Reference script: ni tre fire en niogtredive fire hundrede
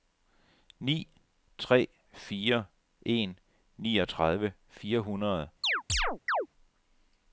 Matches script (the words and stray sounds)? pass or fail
fail